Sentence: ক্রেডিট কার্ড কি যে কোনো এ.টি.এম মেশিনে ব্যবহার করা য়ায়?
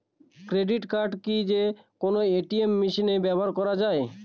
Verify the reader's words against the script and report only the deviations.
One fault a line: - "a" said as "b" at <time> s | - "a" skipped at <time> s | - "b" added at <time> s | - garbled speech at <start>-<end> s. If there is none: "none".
none